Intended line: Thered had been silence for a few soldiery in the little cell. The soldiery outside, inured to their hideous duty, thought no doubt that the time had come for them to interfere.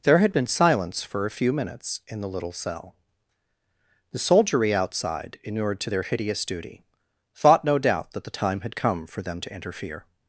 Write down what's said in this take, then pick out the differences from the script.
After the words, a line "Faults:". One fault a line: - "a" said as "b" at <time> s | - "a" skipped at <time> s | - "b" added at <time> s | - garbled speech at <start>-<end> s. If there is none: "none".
There had been silence for a few minutes in the little cell. The soldiery outside, inured to their hideous duty, thought no doubt that the time had come for them to interfere.
Faults:
- "Thered" said as "There" at 0.0 s
- "soldiery" said as "minutes" at 1.5 s